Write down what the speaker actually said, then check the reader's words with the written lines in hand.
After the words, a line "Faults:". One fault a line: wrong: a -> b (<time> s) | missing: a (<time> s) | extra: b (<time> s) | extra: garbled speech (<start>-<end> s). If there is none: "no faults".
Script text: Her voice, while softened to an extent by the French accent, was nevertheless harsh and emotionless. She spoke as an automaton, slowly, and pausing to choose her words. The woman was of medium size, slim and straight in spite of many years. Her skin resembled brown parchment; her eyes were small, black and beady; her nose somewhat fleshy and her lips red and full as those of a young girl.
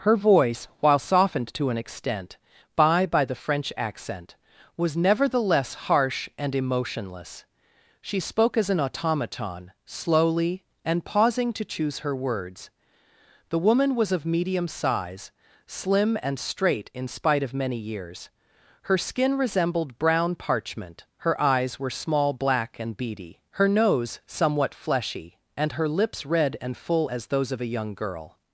Her voice, while softened to an extent by by the French accent, was nevertheless harsh and emotionless. She spoke as an automaton, slowly, and pausing to choose her words. The woman was of medium size, slim and straight in spite of many years. Her skin resembled brown parchment; her eyes were small, black and beady; her nose somewhat fleshy and her lips red and full as those of a young girl.
Faults:
extra: by (3.0 s)